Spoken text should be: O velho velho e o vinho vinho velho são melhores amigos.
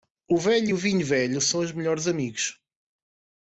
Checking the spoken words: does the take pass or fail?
fail